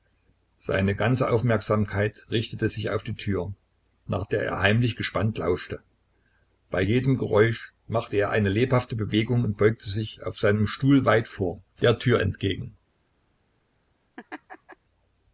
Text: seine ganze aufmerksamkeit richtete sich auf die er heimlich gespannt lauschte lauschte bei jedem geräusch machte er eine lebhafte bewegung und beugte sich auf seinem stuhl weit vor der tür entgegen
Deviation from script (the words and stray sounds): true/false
true